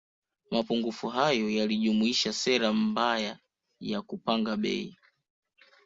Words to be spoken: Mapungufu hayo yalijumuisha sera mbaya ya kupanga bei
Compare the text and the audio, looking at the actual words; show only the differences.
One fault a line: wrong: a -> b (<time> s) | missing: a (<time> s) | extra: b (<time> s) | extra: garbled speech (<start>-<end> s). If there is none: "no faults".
no faults